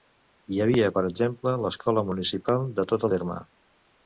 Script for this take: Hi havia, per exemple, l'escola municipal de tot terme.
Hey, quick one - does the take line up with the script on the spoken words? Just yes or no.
yes